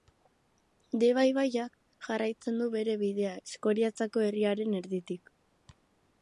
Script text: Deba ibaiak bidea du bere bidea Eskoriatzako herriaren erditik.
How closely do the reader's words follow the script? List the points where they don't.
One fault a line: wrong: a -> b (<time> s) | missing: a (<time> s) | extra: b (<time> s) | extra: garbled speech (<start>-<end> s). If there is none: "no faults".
wrong: bidea -> jarraitzen (2.1 s)